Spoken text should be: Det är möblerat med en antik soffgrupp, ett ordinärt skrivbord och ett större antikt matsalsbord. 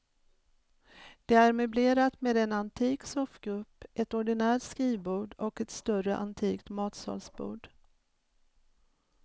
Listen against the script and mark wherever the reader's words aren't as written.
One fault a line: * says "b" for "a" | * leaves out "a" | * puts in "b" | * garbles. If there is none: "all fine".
all fine